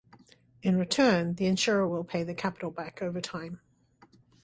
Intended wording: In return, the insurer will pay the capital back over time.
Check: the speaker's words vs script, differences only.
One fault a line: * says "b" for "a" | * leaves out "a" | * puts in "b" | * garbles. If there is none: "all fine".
all fine